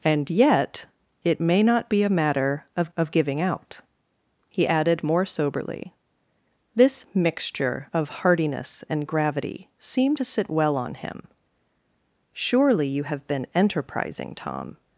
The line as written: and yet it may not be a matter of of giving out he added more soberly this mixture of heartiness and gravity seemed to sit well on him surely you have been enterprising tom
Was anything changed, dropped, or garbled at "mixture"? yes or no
no